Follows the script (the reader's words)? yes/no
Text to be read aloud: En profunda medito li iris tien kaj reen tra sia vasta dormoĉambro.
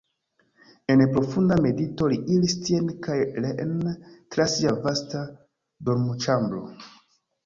yes